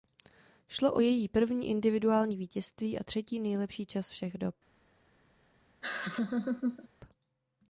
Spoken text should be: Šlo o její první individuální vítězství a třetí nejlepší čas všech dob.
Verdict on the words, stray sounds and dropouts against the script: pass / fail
fail